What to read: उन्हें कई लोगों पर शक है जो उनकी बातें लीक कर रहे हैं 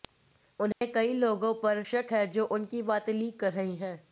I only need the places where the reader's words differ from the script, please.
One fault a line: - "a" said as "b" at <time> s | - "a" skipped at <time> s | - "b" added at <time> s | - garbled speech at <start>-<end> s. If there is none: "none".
none